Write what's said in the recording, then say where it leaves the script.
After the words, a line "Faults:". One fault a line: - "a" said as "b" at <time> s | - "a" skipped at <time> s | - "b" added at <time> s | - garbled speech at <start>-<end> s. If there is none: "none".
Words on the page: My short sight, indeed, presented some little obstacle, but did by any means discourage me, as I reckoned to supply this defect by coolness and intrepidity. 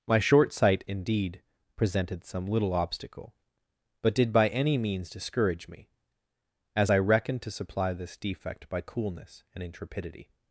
My short sight, indeed, presented some little obstacle, but did by any means discourage me, as I reckoned to supply this defect by coolness and intrepidity.
Faults:
none